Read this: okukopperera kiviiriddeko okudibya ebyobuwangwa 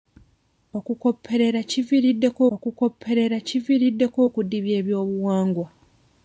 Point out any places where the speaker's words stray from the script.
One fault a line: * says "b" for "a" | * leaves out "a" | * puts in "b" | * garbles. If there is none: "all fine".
* puts in "okukopperera kiviiriddeko"